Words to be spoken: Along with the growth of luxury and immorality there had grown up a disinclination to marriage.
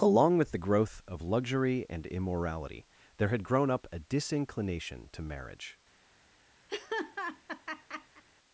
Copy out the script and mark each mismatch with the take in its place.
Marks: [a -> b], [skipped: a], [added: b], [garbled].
Along with the growth of luxury and immorality there had grown up a disinclination to marriage.